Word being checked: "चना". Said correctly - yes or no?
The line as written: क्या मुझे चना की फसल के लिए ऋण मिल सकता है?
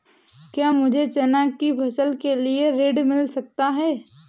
yes